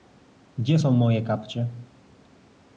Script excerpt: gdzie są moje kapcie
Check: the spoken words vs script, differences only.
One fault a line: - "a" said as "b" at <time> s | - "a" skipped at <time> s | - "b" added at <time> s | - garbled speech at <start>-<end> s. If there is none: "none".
none